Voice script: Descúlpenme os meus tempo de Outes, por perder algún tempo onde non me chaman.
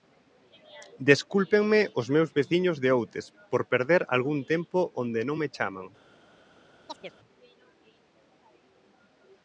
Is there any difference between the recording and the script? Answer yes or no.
yes